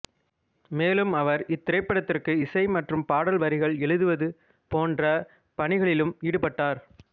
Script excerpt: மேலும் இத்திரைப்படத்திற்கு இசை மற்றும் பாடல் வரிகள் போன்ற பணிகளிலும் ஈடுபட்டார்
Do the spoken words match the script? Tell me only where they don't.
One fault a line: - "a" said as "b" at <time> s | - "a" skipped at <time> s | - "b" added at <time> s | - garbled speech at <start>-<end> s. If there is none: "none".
- "அவர்" added at 1.1 s
- "எழுதுவது" added at 3.9 s